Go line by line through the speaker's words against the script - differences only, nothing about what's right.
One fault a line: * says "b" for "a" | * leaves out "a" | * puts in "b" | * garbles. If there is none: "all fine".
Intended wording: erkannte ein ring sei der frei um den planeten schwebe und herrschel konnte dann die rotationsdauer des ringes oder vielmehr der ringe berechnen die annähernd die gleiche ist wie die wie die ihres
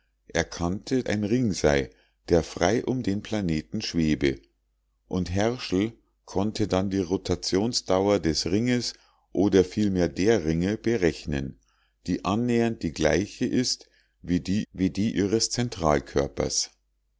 all fine